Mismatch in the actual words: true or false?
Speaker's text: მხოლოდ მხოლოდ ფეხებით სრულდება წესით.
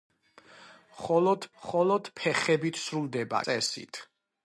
false